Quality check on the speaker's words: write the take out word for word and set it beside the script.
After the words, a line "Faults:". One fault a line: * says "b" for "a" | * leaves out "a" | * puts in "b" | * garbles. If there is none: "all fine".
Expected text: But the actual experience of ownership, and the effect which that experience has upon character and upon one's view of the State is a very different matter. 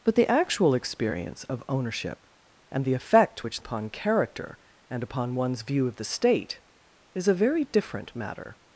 But the actual experience of ownership, and the effect which upon character and upon one's view of the State is a very different matter.
Faults:
* leaves out "that experience has"